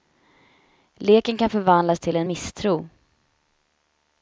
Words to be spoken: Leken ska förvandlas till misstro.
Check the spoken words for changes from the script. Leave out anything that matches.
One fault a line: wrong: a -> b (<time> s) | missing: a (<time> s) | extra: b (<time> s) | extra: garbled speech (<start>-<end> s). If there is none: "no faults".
wrong: ska -> kan (1.4 s)
extra: en (2.1 s)